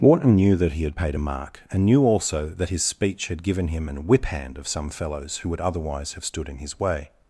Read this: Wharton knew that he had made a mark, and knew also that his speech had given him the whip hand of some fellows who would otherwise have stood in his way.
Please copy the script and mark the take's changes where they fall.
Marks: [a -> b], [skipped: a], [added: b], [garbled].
Wharton knew that he had [made -> paid] a mark, and knew also that his speech had given him [the -> an] whip hand of some fellows who would otherwise have stood in his way.